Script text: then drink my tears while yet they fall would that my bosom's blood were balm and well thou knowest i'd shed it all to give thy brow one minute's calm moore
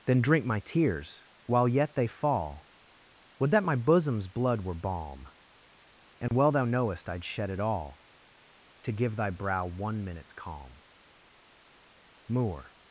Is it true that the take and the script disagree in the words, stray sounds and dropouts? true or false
true